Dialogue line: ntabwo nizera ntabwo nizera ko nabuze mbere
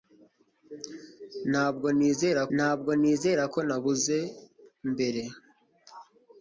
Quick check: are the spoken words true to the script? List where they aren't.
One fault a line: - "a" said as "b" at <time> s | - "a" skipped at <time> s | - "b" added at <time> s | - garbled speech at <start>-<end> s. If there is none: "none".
none